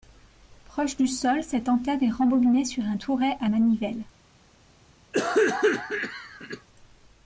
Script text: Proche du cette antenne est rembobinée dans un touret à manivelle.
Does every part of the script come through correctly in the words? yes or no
no